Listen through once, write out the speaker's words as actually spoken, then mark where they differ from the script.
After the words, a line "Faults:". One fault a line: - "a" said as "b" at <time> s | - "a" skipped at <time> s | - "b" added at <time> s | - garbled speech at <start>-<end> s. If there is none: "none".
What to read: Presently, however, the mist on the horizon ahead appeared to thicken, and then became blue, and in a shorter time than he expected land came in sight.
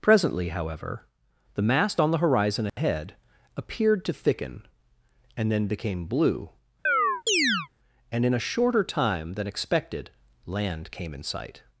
Presently, however, the mast on the horizon ahead appeared to thicken, and then became blue, and in a shorter time than expected land came in sight.
Faults:
- "mist" said as "mast" at 1.6 s
- "he" skipped at 9.5 s